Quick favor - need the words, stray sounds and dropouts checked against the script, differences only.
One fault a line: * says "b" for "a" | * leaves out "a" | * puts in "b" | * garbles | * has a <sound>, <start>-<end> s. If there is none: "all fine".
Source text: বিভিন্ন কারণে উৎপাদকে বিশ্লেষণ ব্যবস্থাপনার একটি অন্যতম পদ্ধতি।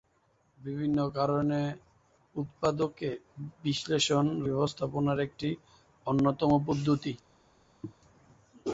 * has a throat clearing, 7.8-7.9 s